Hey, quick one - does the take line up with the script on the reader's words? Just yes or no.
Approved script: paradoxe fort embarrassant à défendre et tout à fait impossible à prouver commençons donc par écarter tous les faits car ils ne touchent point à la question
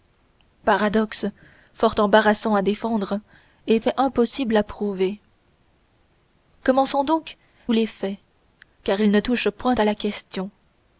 no